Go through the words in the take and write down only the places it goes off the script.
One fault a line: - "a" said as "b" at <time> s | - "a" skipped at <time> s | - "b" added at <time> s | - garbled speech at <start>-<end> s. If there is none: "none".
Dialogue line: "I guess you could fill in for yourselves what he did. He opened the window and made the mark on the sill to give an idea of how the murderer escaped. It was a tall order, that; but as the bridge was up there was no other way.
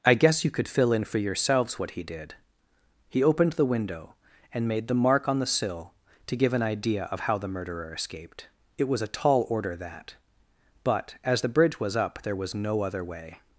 none